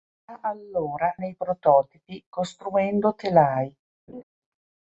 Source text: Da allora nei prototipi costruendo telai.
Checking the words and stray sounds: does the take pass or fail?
fail